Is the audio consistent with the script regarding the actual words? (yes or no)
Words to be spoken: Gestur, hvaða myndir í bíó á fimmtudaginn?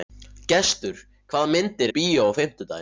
yes